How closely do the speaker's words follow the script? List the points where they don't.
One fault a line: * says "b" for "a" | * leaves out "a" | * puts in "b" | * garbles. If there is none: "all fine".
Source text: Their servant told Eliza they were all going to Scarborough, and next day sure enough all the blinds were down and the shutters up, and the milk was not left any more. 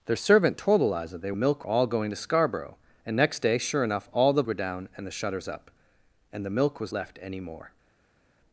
* says "milk" for "were"
* leaves out "blinds"
* leaves out "not"